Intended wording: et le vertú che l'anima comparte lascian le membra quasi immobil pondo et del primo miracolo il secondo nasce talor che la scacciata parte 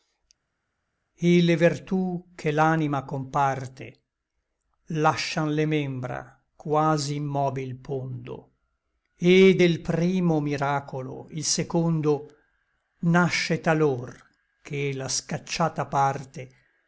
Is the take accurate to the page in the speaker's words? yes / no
yes